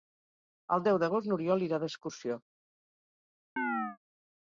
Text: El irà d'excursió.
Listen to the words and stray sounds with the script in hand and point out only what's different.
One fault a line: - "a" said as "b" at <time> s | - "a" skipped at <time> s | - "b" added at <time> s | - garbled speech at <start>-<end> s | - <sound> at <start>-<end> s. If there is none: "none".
- "deu d'agost n'Oriol" added at 0.9 s
- chirp at 3.6-4.0 s